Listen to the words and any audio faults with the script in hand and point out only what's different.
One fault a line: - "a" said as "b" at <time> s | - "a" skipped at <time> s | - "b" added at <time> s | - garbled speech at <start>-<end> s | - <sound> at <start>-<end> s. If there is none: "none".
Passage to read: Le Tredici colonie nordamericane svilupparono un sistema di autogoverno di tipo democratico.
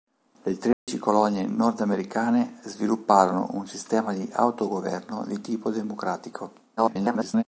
- dropout at 0.7-0.9 s
- garbled speech at 6.8-7.4 s